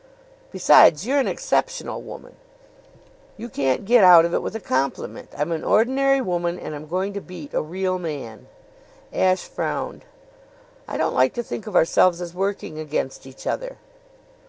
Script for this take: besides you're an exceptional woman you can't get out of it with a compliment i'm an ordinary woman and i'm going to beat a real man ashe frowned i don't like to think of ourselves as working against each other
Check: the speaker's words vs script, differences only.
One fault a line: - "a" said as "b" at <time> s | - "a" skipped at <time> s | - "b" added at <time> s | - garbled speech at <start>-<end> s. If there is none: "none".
none